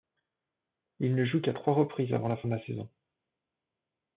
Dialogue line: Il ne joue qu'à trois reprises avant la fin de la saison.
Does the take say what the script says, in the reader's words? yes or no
yes